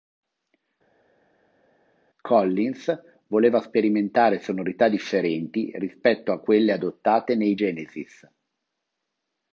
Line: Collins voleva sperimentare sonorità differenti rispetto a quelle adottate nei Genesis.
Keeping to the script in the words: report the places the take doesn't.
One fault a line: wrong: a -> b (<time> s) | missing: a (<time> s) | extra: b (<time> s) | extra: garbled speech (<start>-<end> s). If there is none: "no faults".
no faults